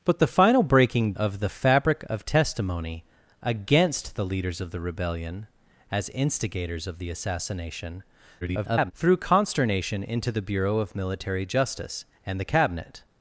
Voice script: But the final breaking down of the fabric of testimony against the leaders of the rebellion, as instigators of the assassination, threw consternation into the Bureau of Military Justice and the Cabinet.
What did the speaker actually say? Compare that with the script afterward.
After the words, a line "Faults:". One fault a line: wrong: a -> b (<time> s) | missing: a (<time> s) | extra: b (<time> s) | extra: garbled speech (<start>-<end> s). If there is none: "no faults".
But the final breaking of the fabric of testimony against the leaders of the rebellion, as instigators of the assassination, [garbled] threw consternation into the Bureau of Military Justice and the Cabinet.
Faults:
missing: down (1.1 s)
extra: garbled speech (8.4-8.9 s)